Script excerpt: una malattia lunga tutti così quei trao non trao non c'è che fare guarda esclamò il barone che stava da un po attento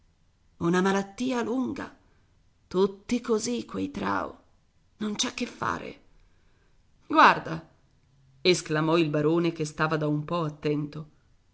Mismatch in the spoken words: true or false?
true